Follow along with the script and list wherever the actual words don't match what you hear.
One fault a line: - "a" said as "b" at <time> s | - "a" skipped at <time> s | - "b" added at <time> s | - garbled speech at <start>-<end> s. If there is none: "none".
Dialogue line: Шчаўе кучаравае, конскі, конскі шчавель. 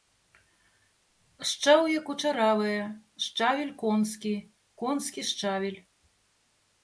- "шчавель" added at 3.2 s